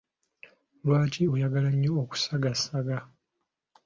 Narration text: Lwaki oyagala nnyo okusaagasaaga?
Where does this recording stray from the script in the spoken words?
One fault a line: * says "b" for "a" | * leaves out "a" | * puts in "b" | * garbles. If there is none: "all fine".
all fine